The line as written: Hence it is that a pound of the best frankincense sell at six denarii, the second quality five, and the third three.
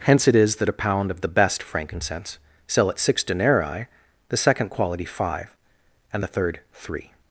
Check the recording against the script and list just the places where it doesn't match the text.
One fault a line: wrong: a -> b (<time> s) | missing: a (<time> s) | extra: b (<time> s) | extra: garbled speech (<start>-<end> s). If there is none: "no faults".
no faults